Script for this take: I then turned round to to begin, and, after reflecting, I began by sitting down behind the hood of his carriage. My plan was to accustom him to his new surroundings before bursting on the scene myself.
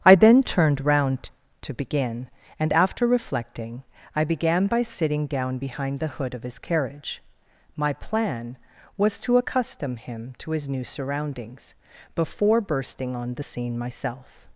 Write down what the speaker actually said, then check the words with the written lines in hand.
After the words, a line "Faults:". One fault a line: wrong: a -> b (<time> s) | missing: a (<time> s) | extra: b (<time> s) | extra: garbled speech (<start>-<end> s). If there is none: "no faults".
I then turned round to begin, and, after reflecting, I began by sitting down behind the hood of his carriage. My plan was to accustom him to his new surroundings before bursting on the scene myself.
Faults:
missing: to (1.7 s)